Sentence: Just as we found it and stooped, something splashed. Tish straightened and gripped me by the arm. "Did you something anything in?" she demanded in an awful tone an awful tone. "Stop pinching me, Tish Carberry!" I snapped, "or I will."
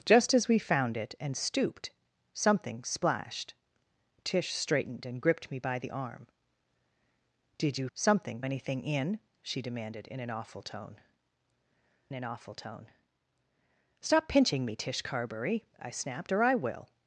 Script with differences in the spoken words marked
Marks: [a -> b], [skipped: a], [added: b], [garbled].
Just as we found it and stooped, something splashed. Tish straightened and gripped me by the arm. "Did you something anything in?" she demanded in an awful tone an awful tone. "Stop pinching me, Tish Carberry!" I snapped, "or I will."